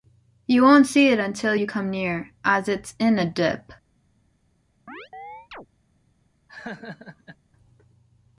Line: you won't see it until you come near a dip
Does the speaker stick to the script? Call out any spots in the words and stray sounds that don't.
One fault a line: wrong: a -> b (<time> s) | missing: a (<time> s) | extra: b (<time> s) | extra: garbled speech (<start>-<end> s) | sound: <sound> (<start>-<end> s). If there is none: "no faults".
extra: as it's in (2.4 s)
sound: chirp (4.9-5.7 s)
sound: laugh (6.5-7.4 s)